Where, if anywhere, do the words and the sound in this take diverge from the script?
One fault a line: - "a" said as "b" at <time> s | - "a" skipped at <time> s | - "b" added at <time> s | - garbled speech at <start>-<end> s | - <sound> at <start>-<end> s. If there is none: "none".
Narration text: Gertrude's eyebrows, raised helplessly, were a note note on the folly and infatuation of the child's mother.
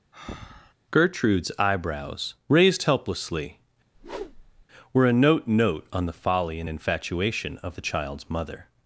- breath at 0.1-0.7 s
- whoosh at 3.9-4.7 s